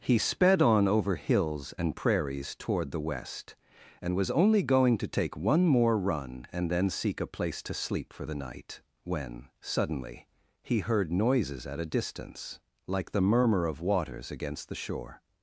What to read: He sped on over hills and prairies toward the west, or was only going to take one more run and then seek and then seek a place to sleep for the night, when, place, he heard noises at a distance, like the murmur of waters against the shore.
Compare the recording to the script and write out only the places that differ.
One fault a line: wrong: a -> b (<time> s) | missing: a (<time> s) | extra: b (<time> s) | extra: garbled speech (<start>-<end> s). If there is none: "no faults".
wrong: or -> and (4.0 s)
missing: and then seek (7.2 s)
wrong: place -> suddenly (9.6 s)